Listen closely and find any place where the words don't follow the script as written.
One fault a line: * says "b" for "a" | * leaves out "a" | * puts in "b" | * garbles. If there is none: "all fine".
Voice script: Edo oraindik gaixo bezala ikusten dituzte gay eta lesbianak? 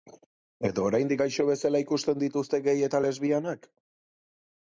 all fine